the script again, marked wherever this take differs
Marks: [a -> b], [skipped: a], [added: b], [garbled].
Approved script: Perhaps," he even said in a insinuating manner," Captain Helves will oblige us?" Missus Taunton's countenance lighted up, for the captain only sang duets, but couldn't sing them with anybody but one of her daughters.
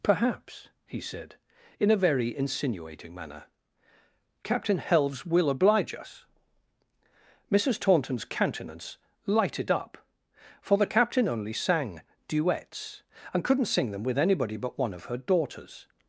Perhaps," he [skipped: even] said in a [added: very] insinuating manner," Captain Helves will oblige us?" Missus Taunton's countenance lighted up, for the captain only sang duets, [but -> and] couldn't sing them with anybody but one of her daughters.